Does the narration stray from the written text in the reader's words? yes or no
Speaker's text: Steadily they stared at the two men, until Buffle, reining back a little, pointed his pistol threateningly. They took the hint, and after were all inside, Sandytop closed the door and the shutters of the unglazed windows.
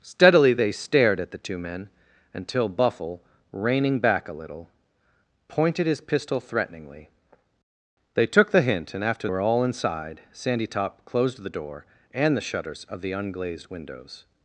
no